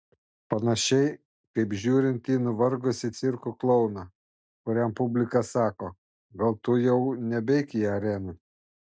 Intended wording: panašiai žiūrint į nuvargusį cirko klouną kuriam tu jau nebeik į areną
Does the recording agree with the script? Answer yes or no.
no